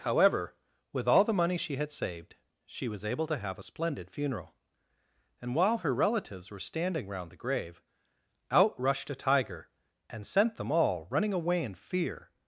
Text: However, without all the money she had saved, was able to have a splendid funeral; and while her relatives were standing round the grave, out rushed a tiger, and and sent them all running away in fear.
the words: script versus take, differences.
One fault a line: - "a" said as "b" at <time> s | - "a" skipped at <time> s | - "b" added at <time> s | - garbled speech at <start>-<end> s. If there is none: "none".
- "without" said as "with" at 0.9 s
- "she" added at 2.6 s
- "and" skipped at 10.2 s